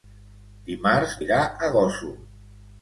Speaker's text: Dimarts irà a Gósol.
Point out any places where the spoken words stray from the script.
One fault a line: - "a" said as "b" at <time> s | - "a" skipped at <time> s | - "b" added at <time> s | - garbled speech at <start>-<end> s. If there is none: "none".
none